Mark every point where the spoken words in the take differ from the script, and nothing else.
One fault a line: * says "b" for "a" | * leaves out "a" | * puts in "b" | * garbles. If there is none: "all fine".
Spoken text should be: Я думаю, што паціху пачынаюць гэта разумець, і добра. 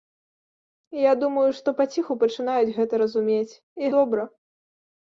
all fine